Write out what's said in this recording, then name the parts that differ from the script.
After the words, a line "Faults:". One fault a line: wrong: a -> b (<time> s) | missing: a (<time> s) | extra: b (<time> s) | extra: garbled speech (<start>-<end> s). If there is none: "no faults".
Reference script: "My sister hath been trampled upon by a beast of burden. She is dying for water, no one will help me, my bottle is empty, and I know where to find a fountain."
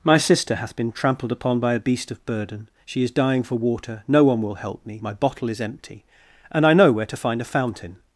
"My sister hath been trampled upon by a beast of burden. She is dying for water, no one will help me, my bottle is empty, and I know where to find a fountain."
Faults:
no faults